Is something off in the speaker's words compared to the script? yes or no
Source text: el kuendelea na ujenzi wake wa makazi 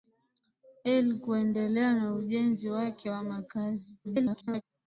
yes